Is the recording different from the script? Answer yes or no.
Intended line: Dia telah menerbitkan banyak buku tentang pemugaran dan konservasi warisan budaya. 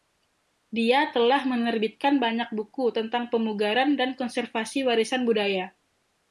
no